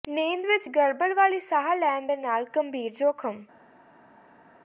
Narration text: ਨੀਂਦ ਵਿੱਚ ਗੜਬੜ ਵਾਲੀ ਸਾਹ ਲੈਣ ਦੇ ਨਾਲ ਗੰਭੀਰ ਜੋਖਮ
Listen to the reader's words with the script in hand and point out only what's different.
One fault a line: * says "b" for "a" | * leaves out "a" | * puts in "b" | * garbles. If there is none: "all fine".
all fine